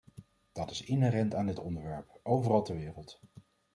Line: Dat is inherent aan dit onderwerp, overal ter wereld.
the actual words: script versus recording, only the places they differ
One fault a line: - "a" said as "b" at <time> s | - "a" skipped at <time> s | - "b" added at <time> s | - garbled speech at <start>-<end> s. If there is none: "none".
none